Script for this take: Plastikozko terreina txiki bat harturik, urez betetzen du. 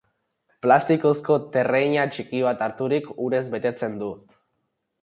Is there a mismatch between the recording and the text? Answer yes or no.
no